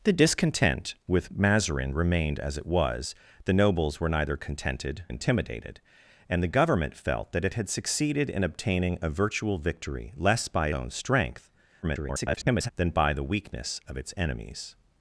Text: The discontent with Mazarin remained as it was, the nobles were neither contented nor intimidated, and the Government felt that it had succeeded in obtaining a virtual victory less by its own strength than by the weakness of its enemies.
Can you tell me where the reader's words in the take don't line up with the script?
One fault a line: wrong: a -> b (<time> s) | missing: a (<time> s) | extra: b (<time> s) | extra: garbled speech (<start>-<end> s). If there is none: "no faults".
missing: nor (5.0 s)
missing: its (10.7 s)
extra: garbled speech (11.8-12.7 s)